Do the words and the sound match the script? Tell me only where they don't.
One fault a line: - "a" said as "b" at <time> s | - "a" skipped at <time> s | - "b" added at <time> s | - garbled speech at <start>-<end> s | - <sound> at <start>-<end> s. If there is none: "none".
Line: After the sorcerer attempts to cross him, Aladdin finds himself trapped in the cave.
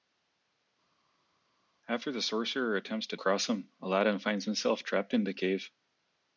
none